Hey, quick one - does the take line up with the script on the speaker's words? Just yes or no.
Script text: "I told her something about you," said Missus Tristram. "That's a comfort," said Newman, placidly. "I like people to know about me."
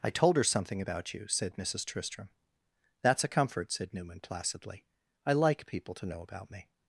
yes